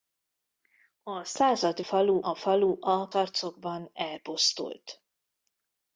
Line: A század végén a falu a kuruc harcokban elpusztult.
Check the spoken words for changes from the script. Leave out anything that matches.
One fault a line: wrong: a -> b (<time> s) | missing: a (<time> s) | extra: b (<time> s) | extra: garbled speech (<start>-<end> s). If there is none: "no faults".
wrong: végén -> falu (1.8 s)
missing: kuruc (3.1 s)